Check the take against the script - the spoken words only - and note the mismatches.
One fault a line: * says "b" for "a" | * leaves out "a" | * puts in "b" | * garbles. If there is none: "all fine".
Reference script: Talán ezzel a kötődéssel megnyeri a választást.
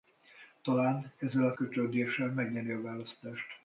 all fine